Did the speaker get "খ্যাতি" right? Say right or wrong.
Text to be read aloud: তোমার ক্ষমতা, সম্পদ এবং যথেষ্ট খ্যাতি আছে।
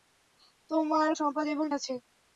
wrong